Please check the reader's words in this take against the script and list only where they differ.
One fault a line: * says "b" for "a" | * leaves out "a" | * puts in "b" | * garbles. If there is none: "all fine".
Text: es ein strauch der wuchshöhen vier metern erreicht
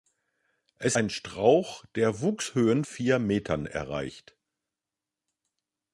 all fine